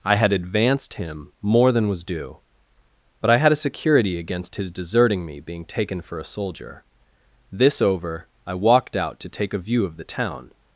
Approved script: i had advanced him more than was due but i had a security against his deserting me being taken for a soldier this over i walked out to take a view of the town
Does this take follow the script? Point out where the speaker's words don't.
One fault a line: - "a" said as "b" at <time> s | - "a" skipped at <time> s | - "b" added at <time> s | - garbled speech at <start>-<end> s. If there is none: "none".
none